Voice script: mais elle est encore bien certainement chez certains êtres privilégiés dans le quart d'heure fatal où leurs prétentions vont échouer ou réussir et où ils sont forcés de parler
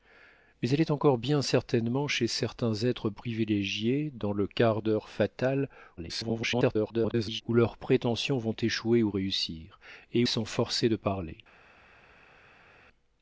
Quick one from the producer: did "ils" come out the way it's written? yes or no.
no